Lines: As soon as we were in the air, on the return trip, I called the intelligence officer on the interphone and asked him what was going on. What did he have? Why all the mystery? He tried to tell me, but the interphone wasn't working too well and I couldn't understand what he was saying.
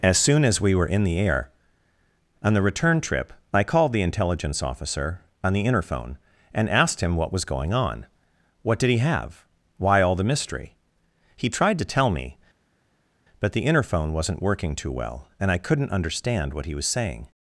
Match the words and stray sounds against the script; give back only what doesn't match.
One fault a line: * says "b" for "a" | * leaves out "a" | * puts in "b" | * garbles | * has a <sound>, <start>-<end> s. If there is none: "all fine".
all fine